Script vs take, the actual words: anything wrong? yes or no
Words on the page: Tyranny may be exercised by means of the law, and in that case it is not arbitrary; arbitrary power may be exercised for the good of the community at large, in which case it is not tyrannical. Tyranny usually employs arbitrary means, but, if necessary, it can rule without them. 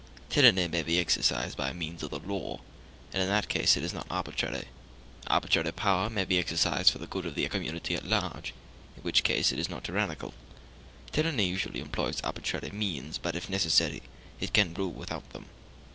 no